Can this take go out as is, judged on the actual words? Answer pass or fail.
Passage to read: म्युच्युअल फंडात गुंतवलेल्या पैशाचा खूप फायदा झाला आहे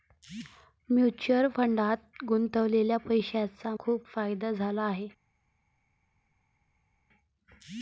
pass